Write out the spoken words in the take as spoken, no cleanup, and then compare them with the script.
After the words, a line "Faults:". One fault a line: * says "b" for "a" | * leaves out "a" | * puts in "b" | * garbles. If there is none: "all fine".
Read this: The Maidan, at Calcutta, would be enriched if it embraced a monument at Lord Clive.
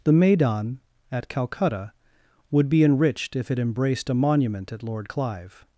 The Maidan, at Calcutta, would be enriched if it embraced a monument at Lord Clive.
Faults:
all fine